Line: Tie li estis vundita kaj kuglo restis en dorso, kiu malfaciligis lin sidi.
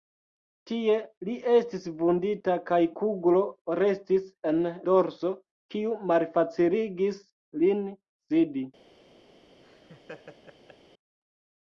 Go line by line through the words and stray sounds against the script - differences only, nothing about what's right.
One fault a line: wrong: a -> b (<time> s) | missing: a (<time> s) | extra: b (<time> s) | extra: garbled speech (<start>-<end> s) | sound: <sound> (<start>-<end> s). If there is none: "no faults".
sound: laugh (9.6-10.8 s)